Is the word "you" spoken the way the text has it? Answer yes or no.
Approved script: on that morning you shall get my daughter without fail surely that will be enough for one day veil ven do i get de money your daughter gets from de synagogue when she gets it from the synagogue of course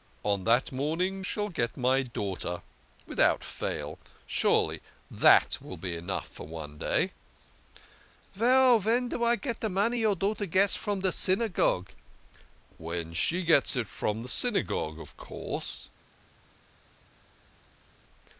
no